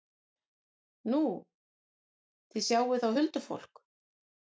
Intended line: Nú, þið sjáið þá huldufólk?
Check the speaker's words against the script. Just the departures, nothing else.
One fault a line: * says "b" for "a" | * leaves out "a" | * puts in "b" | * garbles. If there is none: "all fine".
all fine